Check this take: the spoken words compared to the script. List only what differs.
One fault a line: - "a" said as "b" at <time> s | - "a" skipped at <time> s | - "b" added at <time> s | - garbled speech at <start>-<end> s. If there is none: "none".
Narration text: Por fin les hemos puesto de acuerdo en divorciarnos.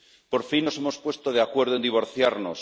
- "les" said as "nos" at 0.6 s